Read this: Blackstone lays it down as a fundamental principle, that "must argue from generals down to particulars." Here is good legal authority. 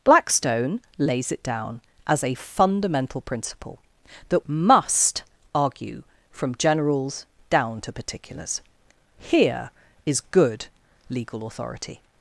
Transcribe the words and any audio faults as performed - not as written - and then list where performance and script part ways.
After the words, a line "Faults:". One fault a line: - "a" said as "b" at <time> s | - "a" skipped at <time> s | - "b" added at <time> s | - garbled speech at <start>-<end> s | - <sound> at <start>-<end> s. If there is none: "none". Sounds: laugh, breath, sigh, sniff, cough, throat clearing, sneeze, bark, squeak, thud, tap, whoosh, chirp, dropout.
Blackstone lays it down as a fundamental principle, that "must argue from generals down to particulars." Here is good legal authority.
Faults:
none